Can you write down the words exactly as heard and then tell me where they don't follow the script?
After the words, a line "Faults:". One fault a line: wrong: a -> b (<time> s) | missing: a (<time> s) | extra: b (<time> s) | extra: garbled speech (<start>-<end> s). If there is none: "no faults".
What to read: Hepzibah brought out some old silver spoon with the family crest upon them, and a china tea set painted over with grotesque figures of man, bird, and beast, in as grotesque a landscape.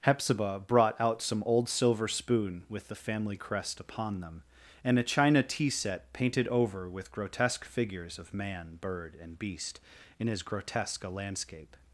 Hepzibah brought out some old silver spoon with the family crest upon them, and a china tea set painted over with grotesque figures of man, bird, and beast, in as grotesque a landscape.
Faults:
no faults